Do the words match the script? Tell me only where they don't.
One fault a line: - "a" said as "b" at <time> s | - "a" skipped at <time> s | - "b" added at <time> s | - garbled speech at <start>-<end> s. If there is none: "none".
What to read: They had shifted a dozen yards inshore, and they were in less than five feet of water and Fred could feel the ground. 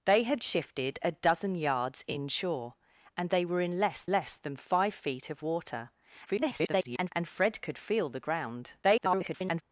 - "less" added at 4.1 s
- garbled speech at 6.3-7.1 s
- garbled speech at 8.8-9.6 s